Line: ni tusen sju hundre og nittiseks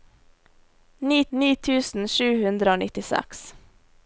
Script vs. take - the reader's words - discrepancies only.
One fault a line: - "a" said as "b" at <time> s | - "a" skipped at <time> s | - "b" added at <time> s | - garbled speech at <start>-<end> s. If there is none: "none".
- "ni" added at 1.4 s